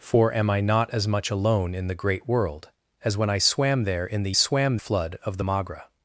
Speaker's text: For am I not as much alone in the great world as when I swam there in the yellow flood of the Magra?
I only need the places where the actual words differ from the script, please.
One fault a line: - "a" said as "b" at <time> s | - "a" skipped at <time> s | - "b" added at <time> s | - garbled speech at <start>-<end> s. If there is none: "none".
- "yellow" said as "swam" at 4.3 s